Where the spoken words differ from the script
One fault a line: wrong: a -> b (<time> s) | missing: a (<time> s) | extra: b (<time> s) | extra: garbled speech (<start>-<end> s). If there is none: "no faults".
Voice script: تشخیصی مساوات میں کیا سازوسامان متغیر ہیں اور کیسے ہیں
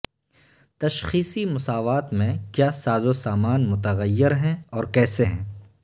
no faults